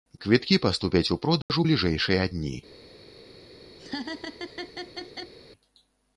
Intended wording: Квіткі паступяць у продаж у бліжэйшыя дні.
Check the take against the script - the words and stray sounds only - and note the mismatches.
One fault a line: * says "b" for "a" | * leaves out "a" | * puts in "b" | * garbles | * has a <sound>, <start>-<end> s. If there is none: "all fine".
* has a dropout, 1.4-1.5 s
* has a laugh, 3.8-5.3 s